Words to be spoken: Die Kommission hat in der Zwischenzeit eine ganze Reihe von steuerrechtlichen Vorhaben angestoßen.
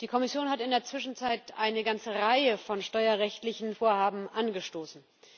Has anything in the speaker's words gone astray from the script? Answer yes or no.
no